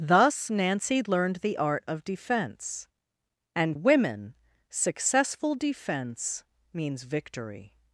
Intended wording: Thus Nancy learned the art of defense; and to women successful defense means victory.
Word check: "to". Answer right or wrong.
wrong